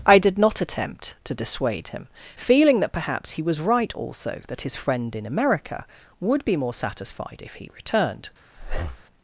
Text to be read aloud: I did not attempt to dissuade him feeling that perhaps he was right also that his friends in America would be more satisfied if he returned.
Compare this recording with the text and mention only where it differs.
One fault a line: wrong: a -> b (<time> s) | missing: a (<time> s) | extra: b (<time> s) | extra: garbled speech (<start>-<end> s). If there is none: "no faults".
wrong: friends -> friend (4.7 s)